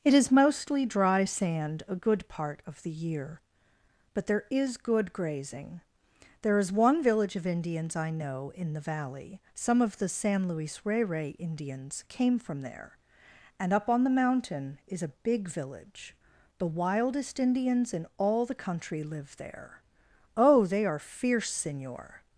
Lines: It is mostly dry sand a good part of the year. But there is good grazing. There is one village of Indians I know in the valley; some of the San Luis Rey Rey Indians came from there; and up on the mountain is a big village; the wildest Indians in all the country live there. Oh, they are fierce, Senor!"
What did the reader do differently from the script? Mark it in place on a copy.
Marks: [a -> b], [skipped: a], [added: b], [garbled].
It is mostly dry sand a good part of the year. But there is good grazing. There is one village of Indians I know in the valley; some of the San Luis Rey Rey Indians came from there; and up on the mountain is a big village; the wildest Indians in all the country live there. Oh, they are fierce, Senor!"